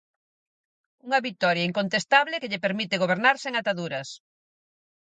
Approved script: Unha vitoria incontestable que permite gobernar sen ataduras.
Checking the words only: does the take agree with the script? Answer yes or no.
no